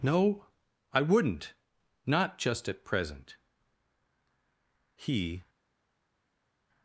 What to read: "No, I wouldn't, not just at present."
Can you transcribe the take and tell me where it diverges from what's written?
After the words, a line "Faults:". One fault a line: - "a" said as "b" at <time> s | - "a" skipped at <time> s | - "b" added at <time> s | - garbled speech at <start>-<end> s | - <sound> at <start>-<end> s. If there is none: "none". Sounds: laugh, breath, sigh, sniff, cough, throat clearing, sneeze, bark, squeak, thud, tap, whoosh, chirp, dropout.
"No, I wouldn't, not just at present." He
Faults:
- "He" added at 5.0 s